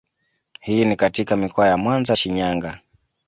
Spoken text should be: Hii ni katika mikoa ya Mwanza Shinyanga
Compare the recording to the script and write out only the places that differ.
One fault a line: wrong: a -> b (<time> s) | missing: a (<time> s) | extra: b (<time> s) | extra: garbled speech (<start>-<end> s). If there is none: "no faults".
no faults